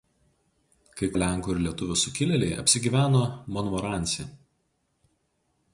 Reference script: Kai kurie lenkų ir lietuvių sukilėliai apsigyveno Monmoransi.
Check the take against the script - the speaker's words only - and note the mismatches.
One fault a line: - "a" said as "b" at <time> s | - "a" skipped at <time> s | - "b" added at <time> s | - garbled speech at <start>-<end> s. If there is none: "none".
- "kurie" skipped at 1.1 s